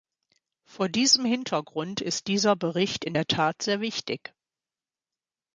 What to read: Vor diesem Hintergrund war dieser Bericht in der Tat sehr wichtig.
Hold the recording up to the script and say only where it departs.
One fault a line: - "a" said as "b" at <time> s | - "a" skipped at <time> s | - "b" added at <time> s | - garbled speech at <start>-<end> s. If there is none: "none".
- "war" said as "ist" at 2.0 s